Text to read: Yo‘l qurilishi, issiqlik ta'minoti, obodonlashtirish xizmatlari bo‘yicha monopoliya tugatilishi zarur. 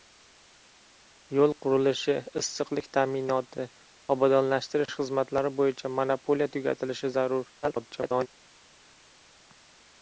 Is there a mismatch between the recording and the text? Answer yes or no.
yes